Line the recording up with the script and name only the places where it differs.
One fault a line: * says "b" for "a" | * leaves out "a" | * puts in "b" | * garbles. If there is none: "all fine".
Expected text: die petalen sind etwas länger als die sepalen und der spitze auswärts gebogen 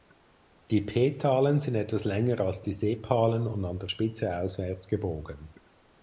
* puts in "an"